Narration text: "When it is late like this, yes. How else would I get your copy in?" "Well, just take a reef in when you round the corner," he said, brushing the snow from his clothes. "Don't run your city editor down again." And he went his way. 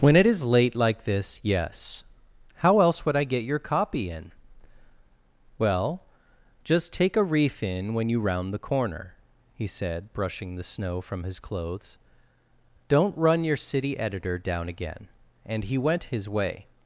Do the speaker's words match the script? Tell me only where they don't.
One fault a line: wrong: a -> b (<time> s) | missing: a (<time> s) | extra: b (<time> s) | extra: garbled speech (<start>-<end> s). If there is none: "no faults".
no faults